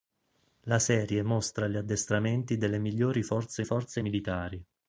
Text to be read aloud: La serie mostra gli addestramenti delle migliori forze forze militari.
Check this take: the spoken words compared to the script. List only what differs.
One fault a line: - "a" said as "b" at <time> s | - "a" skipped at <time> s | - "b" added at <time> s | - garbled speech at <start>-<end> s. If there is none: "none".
none